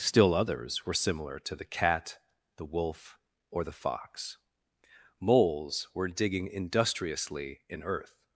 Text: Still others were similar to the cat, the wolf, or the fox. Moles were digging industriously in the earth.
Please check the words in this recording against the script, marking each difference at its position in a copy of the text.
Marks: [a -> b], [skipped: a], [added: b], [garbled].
Still others were similar to the cat, the wolf, or the fox. Moles were digging industriously in [skipped: the] earth.